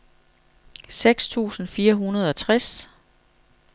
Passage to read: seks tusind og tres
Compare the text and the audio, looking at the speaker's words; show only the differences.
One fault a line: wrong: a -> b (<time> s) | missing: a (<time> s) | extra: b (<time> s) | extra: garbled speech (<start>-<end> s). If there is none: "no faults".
extra: fire hundrede (1.7 s)